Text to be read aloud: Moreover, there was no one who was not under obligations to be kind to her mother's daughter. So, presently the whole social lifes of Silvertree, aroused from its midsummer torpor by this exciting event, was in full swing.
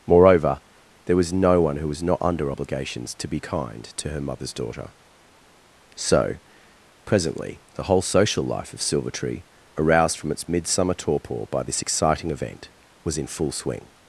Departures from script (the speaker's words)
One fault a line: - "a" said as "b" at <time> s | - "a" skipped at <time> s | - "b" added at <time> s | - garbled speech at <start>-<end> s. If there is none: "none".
- "lifes" said as "life" at 8.4 s